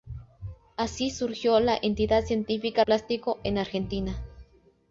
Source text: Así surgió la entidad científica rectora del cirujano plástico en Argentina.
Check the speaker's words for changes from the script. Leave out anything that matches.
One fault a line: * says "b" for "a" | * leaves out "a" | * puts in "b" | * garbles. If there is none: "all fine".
* leaves out "rectora del cirujano"